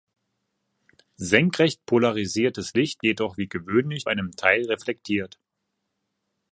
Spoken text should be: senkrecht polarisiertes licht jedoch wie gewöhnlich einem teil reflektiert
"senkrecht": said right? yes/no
yes